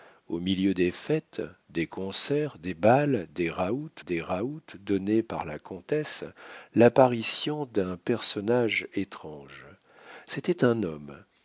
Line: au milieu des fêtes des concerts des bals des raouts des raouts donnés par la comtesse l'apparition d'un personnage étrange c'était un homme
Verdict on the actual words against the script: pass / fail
pass